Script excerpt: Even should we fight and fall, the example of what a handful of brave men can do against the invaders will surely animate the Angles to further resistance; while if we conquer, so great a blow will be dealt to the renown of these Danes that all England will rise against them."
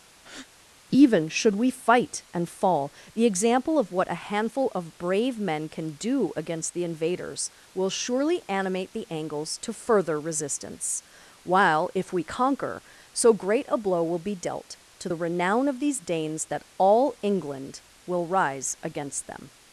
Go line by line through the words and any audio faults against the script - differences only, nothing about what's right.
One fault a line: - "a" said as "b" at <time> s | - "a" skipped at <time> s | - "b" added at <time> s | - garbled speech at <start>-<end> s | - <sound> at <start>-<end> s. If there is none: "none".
- breath at 0.2-0.5 s